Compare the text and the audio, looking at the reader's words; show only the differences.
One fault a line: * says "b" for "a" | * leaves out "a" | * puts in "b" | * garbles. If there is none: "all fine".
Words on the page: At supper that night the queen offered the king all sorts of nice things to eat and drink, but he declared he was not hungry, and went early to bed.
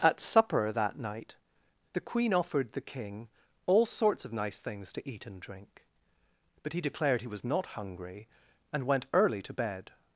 all fine